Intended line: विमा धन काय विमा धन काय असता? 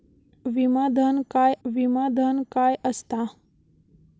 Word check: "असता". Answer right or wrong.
right